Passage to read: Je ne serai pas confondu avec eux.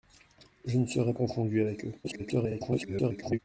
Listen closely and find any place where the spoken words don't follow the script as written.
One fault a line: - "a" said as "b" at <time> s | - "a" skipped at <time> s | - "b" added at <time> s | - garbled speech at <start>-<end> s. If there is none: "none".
- "pas" skipped at 1.1 s
- garbled speech at 2.0-3.4 s